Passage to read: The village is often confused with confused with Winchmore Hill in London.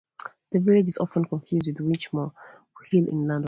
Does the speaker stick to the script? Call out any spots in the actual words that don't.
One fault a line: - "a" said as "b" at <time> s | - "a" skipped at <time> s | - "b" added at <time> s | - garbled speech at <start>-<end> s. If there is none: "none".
- "confused with" skipped at 1.8 s